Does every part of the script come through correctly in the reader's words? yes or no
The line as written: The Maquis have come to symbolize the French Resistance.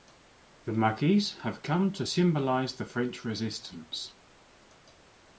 yes